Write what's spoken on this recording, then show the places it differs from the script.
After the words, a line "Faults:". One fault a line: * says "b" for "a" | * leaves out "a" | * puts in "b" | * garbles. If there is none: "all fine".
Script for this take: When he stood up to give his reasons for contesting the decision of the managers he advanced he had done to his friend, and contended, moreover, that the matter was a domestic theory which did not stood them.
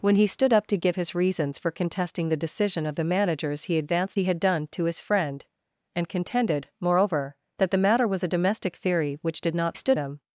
When he stood up to give his reasons for contesting the decision of the managers he advanced he had done to his friend, and contended, moreover, that the matter was a domestic theory which did not stood them.
Faults:
all fine